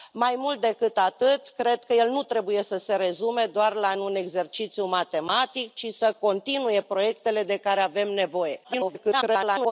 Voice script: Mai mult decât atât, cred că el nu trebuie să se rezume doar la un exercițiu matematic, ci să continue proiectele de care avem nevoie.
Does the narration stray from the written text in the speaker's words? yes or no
yes